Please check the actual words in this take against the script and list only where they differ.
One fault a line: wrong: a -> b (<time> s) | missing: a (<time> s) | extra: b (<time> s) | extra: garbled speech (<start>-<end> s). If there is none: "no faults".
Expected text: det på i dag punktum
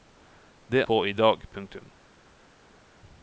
no faults